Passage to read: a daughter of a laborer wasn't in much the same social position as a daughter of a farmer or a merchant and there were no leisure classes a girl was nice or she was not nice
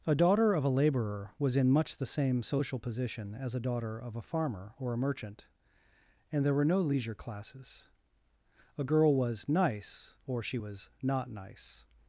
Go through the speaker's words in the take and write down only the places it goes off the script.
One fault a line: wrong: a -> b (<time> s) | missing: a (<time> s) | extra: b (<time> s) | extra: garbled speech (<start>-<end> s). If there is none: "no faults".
wrong: wasn't -> was (1.4 s)